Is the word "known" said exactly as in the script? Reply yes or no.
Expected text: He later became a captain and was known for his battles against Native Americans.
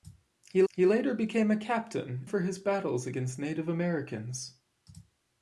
no